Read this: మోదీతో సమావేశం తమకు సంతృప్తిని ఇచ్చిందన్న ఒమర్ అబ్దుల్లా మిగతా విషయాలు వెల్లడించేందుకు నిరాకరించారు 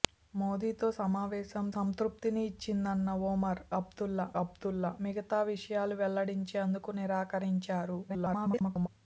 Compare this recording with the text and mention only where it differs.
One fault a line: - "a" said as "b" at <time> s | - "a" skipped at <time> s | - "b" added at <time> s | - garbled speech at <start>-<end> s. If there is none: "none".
- "తమకు" skipped at 1.6 s
- "అబ్దుల్లా" added at 4.4 s
- garbled speech at 8.1-8.9 s